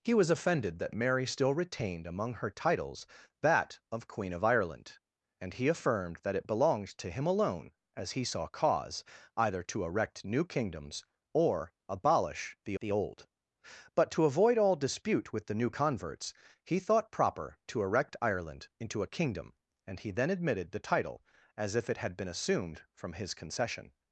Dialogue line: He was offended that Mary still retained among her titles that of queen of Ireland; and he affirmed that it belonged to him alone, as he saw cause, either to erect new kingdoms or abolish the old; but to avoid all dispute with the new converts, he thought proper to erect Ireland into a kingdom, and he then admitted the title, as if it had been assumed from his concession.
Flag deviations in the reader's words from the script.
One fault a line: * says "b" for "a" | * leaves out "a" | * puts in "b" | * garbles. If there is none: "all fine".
* puts in "the"